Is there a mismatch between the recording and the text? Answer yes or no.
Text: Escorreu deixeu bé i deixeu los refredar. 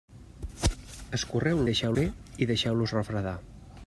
no